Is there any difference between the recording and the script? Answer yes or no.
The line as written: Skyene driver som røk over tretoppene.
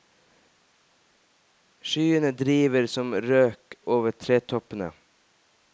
no